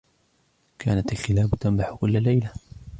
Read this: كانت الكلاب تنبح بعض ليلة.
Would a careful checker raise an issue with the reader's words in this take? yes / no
yes